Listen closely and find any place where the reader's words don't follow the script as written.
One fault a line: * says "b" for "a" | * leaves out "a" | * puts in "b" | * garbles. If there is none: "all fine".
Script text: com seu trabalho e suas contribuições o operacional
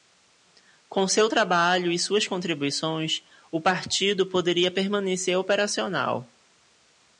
* puts in "partido poderia permanecer"